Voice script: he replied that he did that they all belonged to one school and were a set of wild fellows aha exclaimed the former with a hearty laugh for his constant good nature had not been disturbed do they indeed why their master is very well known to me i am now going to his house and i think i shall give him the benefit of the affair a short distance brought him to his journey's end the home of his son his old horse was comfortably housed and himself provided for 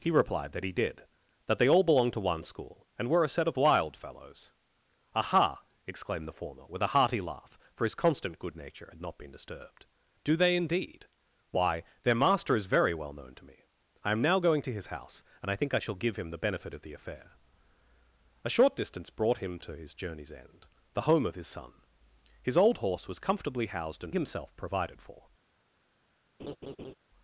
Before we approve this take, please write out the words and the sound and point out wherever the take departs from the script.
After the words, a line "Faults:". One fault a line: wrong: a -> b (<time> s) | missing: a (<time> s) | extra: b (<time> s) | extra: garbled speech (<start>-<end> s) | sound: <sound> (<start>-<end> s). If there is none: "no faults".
he replied that he did that they all belonged to one school and were a set of wild fellows aha exclaimed the former with a hearty laugh for his constant good nature had not been disturbed do they indeed why their master is very well known to me i am now going to his house and i think i shall give him the benefit of the affair a short distance brought him to his journey's end the home of his son his old horse was comfortably housed and himself provided for
Faults:
sound: laugh (26.4-26.9 s)